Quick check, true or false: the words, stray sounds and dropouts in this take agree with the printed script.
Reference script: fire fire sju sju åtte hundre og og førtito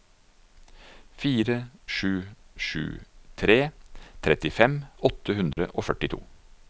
false